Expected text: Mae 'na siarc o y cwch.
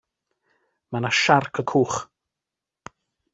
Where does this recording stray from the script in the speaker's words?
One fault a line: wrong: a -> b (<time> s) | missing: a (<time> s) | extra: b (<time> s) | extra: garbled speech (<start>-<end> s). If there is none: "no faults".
no faults